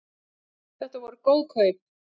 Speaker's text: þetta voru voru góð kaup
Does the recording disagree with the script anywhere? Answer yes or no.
yes